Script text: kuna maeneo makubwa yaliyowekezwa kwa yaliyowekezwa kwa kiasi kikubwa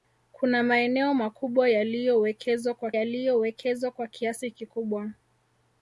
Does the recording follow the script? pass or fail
pass